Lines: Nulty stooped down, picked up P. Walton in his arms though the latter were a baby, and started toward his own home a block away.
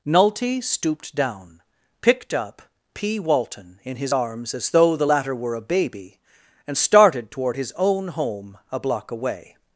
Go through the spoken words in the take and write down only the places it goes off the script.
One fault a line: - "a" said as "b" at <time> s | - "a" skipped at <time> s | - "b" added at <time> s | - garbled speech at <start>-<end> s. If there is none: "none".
- "as" added at 4.5 s